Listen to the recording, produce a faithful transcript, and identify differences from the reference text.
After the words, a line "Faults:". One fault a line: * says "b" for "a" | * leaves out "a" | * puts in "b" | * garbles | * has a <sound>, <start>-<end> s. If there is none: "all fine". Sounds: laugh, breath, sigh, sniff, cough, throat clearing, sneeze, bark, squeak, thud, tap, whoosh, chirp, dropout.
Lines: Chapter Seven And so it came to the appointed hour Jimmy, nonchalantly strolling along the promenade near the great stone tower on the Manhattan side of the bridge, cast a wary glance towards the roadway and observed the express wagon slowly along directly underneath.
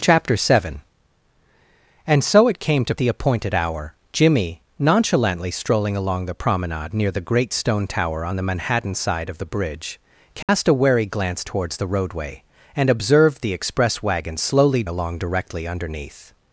Chapter Seven And so it came to the appointed hour Jimmy, nonchalantly strolling along the promenade near the great stone tower on the Manhattan side of the bridge, cast a wary glance towards the roadway and observed the express wagon slowly along directly underneath.
Faults:
* has a dropout, 10.4-10.5 s